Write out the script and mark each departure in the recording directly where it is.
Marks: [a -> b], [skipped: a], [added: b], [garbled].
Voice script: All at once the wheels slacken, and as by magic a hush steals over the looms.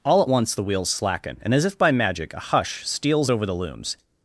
All at once the wheels slacken, and as [added: if] by magic a hush steals over the looms.